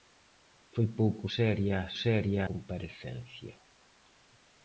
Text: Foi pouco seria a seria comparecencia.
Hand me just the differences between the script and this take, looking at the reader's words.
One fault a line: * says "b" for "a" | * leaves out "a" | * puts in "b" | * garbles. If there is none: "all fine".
all fine